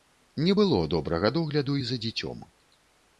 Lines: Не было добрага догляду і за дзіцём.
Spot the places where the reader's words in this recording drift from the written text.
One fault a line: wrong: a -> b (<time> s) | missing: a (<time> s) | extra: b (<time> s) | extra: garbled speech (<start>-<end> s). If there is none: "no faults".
no faults